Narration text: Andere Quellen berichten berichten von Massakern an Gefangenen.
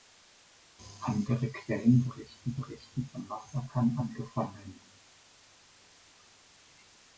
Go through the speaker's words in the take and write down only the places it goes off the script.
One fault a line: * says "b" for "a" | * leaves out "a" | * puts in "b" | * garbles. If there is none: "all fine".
all fine